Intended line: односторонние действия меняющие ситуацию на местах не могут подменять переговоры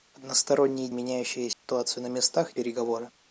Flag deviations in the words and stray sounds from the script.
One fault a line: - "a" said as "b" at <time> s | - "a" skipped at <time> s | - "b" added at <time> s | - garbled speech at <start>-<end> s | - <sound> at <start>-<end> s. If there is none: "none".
- "действия" skipped at 0.9 s
- dropout at 1.5-1.6 s
- "не могут подменять" skipped at 2.6 s